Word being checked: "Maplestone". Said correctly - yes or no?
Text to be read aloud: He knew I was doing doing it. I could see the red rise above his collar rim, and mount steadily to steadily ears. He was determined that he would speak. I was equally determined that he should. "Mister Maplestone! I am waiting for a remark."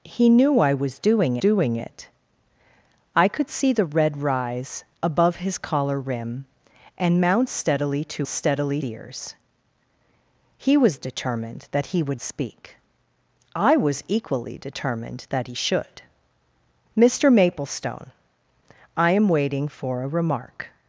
yes